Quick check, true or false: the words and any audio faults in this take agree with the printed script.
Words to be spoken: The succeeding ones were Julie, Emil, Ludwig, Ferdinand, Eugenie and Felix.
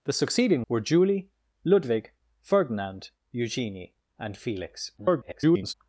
false